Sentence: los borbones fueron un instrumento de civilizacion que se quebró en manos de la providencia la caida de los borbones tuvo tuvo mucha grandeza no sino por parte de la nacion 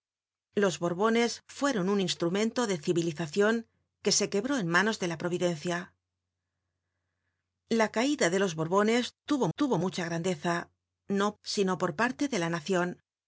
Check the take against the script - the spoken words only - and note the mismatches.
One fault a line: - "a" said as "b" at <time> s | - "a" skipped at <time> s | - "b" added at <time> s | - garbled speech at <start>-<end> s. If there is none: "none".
none